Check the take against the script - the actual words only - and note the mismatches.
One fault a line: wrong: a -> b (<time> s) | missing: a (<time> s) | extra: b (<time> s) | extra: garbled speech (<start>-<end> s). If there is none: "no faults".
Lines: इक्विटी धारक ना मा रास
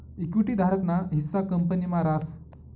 extra: हिस्सा कंपनी (1.1 s)